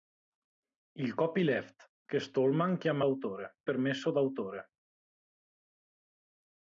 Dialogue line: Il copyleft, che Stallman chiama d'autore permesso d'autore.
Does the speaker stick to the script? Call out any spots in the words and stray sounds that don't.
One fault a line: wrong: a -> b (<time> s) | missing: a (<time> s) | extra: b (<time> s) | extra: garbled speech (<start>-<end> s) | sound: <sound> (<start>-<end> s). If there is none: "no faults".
no faults